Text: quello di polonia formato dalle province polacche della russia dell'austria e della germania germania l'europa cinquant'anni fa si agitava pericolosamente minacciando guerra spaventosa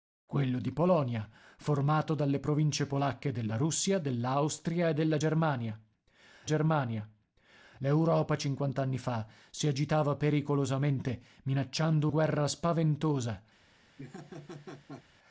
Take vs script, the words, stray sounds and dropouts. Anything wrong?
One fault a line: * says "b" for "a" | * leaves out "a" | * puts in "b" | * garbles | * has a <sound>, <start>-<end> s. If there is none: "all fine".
* has a laugh, 14.0-15.0 s